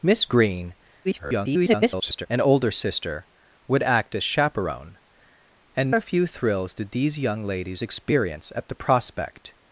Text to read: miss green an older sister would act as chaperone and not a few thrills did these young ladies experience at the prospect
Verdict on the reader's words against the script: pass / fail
fail